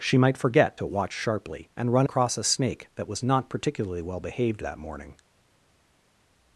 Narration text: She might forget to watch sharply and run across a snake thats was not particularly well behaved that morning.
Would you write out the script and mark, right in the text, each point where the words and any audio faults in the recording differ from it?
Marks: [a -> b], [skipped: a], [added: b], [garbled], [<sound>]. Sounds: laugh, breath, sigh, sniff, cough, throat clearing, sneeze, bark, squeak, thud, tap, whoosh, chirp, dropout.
She might forget to watch sharply and run across a snake [thats -> that] was not particularly well behaved that morning.